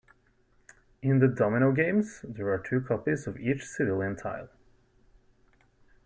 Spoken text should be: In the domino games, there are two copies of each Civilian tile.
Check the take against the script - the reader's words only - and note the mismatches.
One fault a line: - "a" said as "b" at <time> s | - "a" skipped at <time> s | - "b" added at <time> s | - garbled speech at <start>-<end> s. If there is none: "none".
none